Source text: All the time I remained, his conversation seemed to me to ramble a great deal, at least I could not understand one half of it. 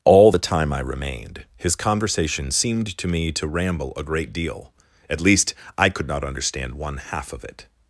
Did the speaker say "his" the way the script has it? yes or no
yes